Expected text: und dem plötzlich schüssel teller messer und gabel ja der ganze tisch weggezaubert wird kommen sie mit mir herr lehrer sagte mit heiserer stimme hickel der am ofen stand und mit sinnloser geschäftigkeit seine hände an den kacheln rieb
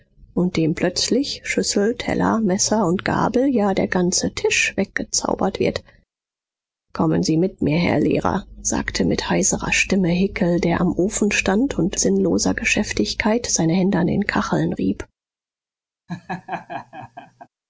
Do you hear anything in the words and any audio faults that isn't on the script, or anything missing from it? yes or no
yes